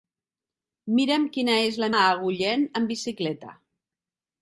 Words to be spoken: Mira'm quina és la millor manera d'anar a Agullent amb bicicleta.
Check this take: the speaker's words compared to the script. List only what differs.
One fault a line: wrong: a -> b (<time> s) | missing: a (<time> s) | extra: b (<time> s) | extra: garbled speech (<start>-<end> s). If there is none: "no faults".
missing: millor manera d'anar (1.9 s)